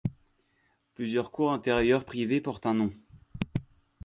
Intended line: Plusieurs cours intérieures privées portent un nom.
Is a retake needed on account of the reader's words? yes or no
no